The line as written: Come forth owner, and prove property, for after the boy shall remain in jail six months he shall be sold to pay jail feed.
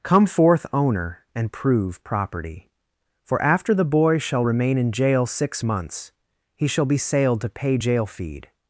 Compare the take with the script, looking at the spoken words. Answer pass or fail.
fail